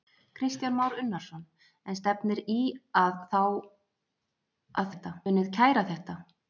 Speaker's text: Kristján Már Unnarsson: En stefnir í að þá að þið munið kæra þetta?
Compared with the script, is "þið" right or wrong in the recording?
wrong